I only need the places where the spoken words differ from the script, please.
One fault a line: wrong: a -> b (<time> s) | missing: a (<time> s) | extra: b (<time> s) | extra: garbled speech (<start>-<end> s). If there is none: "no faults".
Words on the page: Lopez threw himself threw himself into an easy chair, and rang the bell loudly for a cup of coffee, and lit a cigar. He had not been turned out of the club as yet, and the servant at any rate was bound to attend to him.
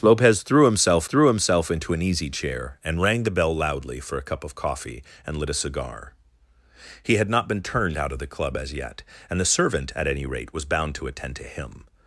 no faults